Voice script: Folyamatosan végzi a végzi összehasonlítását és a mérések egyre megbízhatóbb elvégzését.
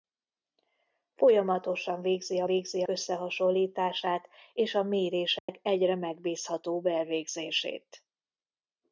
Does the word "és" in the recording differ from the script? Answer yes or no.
no